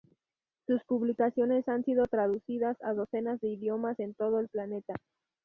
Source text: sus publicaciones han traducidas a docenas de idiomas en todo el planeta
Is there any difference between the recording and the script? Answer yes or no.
yes